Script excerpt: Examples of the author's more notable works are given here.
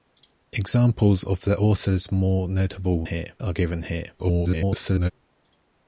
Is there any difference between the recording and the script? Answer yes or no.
yes